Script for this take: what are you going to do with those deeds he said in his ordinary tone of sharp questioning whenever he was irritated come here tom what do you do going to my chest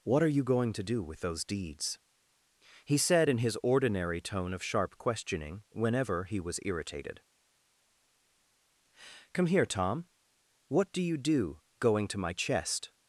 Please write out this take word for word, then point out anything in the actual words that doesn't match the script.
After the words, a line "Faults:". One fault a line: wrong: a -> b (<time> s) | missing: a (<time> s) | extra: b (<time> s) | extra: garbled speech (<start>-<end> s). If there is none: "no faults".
what are you going to do with those deeds he said in his ordinary tone of sharp questioning whenever he was irritated come here tom what do you do going to my chest
Faults:
no faults